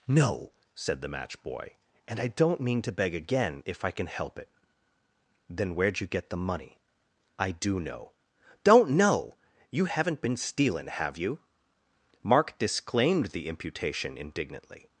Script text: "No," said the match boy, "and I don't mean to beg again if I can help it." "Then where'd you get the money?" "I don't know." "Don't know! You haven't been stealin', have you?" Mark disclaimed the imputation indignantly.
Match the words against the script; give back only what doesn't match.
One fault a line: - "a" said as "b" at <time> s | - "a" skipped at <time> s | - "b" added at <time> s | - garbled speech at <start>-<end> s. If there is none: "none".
- "don't" said as "do" at 7.5 s